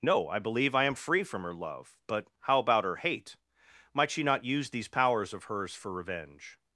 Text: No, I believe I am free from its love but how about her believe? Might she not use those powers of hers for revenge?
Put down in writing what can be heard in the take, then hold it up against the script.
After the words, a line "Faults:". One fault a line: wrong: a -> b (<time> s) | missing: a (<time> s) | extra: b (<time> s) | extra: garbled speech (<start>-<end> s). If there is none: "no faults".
No, I believe I am free from her love but how about her hate? Might she not use these powers of hers for revenge?
Faults:
wrong: its -> her (1.4 s)
wrong: believe -> hate (3.0 s)
wrong: those -> these (4.7 s)